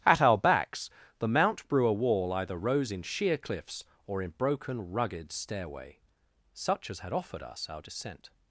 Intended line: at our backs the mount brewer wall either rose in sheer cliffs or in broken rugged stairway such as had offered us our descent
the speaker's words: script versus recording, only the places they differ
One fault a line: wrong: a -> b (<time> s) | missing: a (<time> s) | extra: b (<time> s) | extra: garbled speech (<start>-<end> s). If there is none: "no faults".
no faults